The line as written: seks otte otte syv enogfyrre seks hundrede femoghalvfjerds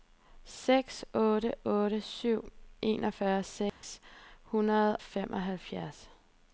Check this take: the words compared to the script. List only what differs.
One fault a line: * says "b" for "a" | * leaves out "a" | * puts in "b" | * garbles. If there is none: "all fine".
all fine